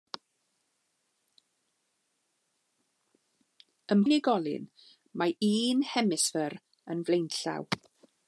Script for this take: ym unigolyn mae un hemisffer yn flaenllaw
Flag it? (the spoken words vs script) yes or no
no